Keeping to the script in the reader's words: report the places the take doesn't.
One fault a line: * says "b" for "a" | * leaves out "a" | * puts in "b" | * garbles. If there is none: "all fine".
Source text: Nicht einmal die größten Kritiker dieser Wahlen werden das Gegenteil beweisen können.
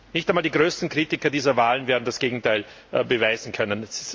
all fine